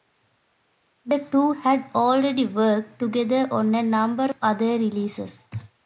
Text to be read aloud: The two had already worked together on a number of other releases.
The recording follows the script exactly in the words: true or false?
true